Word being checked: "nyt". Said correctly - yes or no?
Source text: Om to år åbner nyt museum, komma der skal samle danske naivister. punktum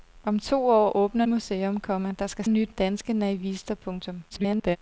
no